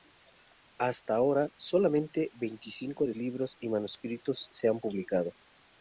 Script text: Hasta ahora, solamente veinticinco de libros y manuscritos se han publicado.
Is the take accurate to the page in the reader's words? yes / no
yes